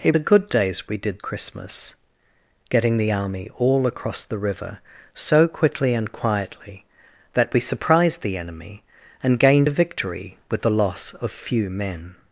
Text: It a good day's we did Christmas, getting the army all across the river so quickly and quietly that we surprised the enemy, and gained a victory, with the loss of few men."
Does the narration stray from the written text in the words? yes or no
no